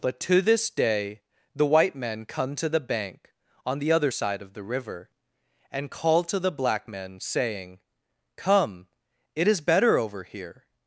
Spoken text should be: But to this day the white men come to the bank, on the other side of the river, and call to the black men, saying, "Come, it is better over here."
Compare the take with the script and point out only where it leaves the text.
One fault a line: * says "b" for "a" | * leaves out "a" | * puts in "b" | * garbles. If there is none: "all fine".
all fine